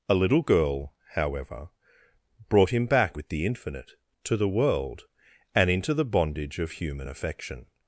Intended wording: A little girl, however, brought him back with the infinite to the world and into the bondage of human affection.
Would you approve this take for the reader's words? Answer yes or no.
yes